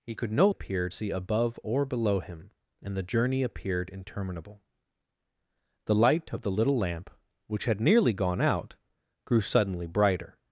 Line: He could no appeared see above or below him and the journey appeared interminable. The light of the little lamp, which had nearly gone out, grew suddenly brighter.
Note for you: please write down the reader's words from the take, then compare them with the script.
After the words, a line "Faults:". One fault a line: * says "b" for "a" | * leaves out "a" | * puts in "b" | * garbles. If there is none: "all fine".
He could no appeared see above or below him and the journey appeared interminable. The light of the little lamp, which had nearly gone out, grew suddenly brighter.
Faults:
all fine